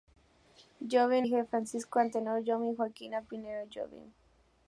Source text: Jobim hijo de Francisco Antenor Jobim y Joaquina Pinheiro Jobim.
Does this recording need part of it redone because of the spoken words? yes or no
no